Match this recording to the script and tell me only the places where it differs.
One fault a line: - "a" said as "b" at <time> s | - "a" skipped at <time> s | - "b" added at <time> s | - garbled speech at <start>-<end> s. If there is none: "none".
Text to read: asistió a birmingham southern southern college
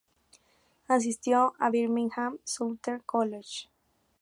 - "southern" skipped at 3.0 s